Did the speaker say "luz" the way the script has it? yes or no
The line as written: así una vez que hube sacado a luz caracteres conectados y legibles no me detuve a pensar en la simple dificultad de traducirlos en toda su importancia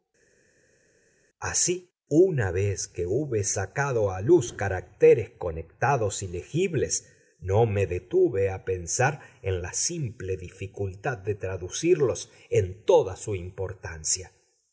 yes